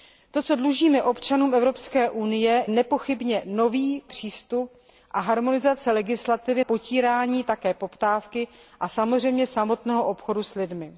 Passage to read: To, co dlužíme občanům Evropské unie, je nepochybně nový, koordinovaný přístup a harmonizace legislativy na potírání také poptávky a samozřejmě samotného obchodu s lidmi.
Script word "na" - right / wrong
wrong